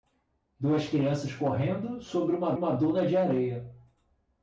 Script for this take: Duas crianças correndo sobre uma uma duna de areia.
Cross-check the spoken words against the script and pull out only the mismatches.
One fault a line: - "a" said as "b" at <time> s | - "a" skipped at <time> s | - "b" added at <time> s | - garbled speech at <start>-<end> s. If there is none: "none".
none